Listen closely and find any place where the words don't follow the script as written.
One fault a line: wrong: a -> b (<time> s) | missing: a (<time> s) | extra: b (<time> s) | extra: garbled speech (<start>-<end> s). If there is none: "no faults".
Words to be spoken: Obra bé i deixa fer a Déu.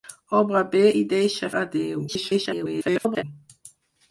missing: fer (1.5 s)
extra: garbled speech (2.1-3.2 s)